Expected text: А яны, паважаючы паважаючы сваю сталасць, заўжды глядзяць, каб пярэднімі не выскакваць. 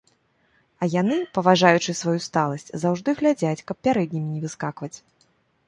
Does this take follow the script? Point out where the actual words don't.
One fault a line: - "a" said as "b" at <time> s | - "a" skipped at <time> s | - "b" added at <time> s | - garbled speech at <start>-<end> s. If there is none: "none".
- "паважаючы" skipped at 1.9 s